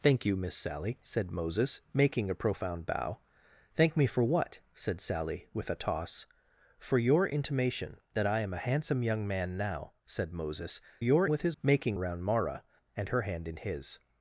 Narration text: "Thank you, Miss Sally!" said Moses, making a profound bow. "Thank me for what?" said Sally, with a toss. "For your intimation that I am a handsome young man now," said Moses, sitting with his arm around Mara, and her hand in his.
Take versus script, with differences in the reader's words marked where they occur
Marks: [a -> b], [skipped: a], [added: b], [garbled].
"Thank you, Miss Sally!" said Moses, making a profound bow. "Thank me for what?" said Sally, with a toss. "For your intimation that I am a handsome young man now," said Moses, [sitting -> your] with his [arm -> making] around Mara, and her hand in his.